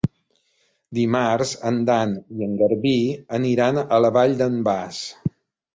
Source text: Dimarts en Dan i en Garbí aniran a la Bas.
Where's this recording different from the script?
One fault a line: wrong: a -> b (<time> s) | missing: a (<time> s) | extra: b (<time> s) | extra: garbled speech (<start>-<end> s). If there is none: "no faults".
extra: Vall d'en (4.2 s)